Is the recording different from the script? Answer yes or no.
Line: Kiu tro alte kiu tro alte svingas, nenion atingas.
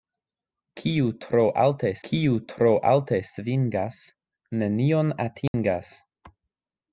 no